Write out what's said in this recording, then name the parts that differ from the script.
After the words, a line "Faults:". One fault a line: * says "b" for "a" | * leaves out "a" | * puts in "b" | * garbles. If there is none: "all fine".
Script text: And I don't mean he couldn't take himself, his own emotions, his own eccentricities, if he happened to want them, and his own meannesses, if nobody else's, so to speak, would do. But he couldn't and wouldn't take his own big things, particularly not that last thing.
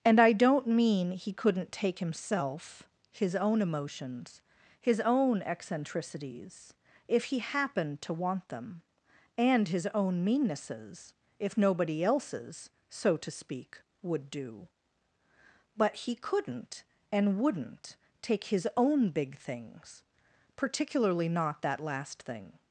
And I don't mean he couldn't take himself, his own emotions, his own eccentricities, if he happened to want them, and his own meannesses, if nobody else's, so to speak, would do. But he couldn't and wouldn't take his own big things, particularly not that last thing.
Faults:
all fine